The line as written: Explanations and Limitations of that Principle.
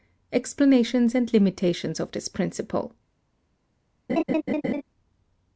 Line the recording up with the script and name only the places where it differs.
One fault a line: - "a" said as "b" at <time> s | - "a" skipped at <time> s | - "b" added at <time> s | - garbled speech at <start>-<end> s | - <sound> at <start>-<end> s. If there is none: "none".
- "that" said as "this" at 2.1 s
- laugh at 4.1-4.8 s